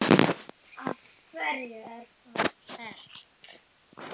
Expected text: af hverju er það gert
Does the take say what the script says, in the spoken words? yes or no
yes